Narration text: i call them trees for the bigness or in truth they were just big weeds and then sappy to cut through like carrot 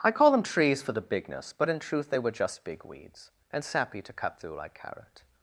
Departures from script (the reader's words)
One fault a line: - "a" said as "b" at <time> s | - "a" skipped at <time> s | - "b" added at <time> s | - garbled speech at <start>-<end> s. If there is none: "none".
- "or" said as "but" at 1.6 s
- "then" skipped at 3.6 s